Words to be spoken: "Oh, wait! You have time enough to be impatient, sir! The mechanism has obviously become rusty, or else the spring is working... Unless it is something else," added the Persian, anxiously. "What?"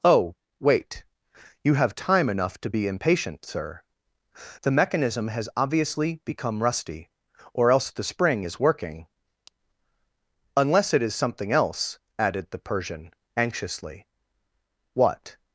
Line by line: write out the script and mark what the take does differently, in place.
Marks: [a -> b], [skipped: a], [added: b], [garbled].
"Oh, wait! You have time enough to be impatient, sir! The mechanism has obviously become rusty, or else the spring is working... Unless it is something else," added the Persian, anxiously. "What?"